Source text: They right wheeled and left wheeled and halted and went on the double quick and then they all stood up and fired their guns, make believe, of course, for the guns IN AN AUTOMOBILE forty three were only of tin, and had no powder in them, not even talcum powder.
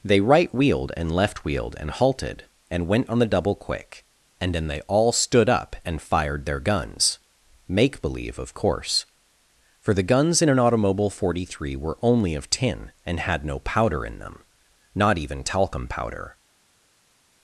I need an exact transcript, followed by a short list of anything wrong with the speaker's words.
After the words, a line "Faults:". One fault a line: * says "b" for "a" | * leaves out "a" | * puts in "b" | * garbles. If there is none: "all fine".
They right wheeled and left wheeled and halted and went on the double quick and then they all stood up and fired their guns, make believe, of course, for the guns IN AN AUTOMOBILE forty three were only of tin, and had no powder in them, not even talcum powder.
Faults:
all fine